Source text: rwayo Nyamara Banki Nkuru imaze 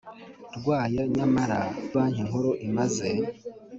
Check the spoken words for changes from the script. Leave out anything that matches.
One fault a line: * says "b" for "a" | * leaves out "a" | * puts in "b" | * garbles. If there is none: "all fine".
all fine